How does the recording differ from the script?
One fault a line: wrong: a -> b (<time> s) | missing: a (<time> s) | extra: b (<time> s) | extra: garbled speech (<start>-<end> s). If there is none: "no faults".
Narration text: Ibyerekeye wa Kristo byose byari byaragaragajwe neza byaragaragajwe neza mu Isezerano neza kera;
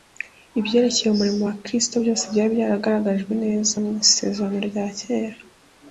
extra: umurimo (1.1 s)
missing: byaragaragajwe neza (3.8 s)
wrong: neza -> rya (4.7 s)